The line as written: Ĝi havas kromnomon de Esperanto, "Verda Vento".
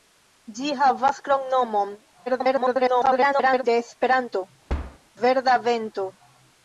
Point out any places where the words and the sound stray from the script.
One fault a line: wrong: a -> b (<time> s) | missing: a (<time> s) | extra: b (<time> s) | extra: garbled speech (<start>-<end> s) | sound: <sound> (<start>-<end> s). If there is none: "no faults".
extra: garbled speech (2.3-3.6 s)
sound: thud (4.7-5.0 s)